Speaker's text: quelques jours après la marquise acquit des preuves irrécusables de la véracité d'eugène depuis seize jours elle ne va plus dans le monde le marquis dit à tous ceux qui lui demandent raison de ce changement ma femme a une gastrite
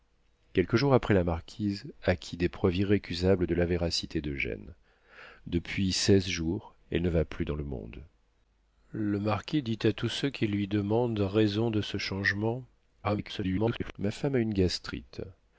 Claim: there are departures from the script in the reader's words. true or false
true